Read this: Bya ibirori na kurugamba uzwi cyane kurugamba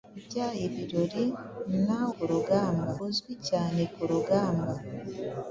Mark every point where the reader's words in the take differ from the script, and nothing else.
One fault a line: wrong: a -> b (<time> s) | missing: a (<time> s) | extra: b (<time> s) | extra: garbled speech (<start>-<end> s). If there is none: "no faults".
no faults